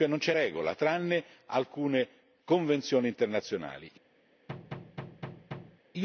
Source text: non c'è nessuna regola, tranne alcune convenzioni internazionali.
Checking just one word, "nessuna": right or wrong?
wrong